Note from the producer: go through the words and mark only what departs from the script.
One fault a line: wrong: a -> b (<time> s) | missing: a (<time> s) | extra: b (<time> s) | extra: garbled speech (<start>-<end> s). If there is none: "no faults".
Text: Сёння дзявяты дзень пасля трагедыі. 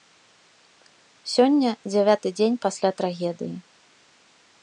no faults